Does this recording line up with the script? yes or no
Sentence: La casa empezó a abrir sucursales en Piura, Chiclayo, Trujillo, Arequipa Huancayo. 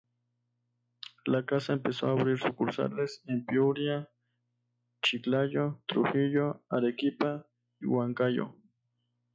yes